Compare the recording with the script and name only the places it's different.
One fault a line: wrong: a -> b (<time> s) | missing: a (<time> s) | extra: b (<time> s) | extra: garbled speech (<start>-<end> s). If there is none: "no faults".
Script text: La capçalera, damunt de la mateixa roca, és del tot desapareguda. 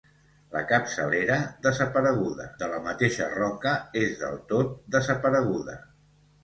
wrong: damunt -> desapareguda (1.7 s)